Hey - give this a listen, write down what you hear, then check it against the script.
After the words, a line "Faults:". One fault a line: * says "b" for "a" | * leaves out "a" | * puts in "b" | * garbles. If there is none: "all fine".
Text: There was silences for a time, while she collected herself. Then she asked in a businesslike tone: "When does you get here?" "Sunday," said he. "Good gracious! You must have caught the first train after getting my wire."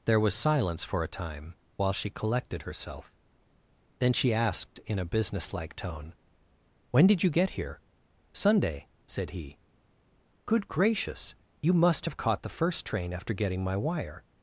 There was silence for a time, while she collected herself. Then she asked in a businesslike tone: "When did you get here?" "Sunday," said he. "Good gracious! You must have caught the first train after getting my wire."
Faults:
* says "silence" for "silences"
* says "did" for "does"